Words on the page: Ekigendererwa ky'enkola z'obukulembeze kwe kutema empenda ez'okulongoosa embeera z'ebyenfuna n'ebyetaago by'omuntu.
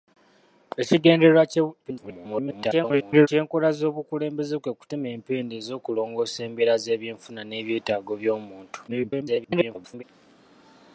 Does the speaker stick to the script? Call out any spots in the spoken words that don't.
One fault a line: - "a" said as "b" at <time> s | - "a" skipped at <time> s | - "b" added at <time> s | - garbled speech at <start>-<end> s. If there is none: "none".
- garbled speech at 1.8-3.3 s
- garbled speech at 8.9-10.0 s